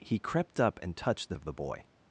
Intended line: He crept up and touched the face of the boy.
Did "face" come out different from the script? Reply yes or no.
yes